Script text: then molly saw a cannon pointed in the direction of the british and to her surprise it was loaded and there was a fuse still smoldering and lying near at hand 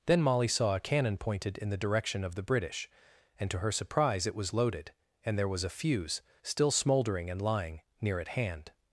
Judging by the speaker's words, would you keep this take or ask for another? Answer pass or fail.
pass